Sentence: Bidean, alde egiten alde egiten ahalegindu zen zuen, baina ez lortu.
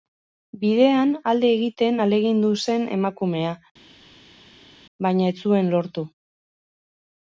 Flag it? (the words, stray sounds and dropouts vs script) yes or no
yes